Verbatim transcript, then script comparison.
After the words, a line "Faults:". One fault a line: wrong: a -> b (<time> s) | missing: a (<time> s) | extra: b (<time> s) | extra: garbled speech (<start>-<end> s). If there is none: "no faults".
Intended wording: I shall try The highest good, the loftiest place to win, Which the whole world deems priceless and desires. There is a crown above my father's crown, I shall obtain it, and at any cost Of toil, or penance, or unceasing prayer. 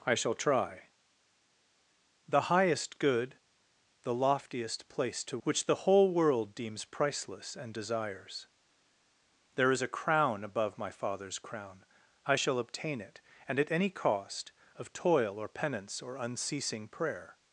I shall try The highest good, the loftiest place to Which the whole world deems priceless and desires. There is a crown above my father's crown, I shall obtain it, and at any cost Of toil, or penance, or unceasing prayer.
Faults:
missing: win (5.4 s)